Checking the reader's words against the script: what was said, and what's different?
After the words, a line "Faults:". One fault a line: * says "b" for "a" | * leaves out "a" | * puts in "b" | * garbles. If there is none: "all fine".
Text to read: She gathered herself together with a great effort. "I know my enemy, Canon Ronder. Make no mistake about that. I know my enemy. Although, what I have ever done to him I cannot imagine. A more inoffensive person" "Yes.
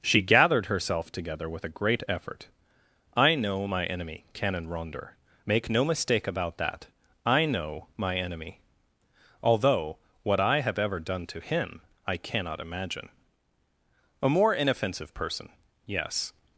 She gathered herself together with a great effort. "I know my enemy, Canon Ronder. Make no mistake about that. I know my enemy. Although, what I have ever done to him I cannot imagine. A more inoffensive person" "Yes.
Faults:
all fine